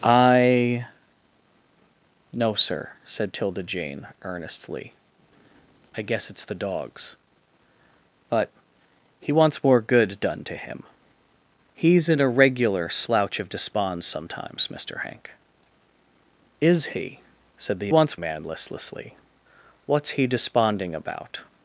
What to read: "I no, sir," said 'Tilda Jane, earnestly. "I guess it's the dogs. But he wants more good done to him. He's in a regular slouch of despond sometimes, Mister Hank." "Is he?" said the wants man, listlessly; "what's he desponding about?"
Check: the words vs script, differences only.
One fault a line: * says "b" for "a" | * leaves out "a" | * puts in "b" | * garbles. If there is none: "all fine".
all fine